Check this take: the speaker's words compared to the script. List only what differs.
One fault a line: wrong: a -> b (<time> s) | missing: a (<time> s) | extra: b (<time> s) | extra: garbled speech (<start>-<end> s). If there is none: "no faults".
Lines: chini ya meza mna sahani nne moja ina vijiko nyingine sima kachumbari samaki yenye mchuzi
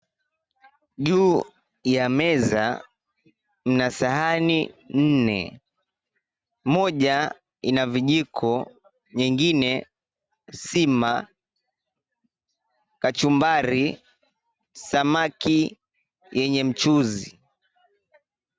wrong: chini -> juu (1.1 s)